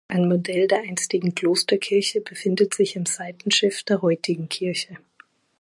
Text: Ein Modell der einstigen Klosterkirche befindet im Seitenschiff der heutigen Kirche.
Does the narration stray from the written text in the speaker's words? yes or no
yes